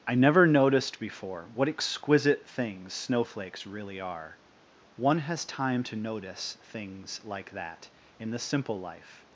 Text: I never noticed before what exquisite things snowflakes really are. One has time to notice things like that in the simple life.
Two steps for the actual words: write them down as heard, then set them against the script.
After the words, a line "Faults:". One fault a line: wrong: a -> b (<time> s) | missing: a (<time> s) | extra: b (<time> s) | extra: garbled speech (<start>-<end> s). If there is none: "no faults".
I never noticed before what exquisite things snowflakes really are. One has time to notice things like that in the simple life.
Faults:
no faults